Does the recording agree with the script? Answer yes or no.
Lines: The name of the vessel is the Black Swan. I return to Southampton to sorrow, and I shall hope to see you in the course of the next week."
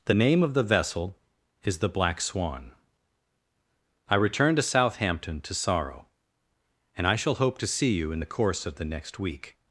yes